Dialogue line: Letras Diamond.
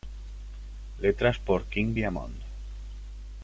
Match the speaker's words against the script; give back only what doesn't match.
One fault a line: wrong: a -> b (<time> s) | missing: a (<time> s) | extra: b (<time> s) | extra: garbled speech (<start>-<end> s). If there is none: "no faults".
extra: por King (1.4 s)